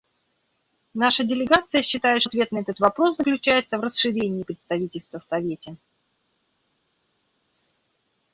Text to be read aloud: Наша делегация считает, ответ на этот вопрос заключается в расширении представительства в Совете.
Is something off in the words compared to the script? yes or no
no